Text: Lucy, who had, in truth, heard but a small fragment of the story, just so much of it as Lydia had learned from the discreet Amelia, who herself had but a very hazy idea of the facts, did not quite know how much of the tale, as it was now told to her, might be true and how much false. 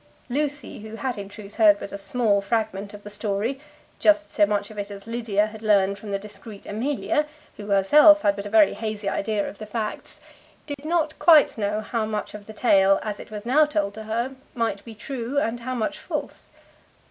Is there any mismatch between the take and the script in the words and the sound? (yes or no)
yes